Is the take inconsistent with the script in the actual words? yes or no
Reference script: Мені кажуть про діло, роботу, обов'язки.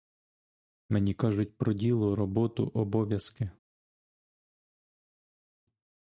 no